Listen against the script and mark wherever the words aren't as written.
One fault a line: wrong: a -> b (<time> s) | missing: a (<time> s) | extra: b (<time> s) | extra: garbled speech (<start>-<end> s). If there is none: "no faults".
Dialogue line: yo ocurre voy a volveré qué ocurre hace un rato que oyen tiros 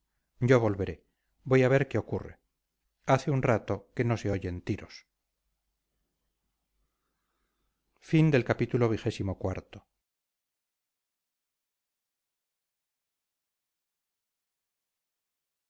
wrong: ocurre -> volveré (0.6 s)
wrong: volveré -> ver (1.7 s)
extra: no se (4.0 s)